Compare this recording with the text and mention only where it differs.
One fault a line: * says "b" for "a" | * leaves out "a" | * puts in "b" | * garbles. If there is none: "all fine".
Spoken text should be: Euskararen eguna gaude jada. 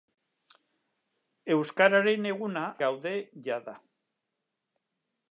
all fine